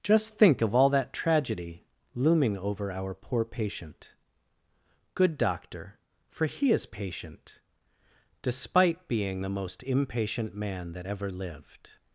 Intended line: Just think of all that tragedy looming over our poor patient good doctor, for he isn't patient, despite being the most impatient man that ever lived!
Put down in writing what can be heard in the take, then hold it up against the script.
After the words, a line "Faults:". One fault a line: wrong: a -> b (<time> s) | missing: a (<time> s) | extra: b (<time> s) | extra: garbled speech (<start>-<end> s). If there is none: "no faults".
Just think of all that tragedy looming over our poor patient good doctor, for he is patient, despite being the most impatient man that ever lived!
Faults:
wrong: isn't -> is (6.7 s)